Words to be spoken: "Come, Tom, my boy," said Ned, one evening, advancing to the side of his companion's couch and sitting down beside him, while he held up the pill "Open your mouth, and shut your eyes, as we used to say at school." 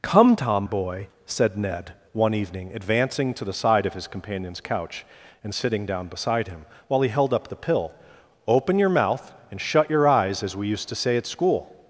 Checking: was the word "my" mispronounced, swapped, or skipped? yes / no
yes